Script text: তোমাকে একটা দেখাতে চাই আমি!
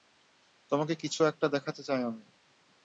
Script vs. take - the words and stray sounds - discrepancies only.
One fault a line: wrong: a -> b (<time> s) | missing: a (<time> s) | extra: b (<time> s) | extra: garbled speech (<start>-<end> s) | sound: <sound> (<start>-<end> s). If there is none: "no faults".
extra: কিছু (0.9 s)